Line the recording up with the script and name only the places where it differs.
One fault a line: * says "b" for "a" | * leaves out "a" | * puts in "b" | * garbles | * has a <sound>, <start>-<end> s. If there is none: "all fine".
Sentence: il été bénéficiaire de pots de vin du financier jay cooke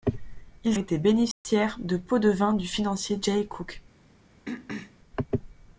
* has a dropout, 1.3-1.4 s
* has a throat clearing, 4.5-5.0 s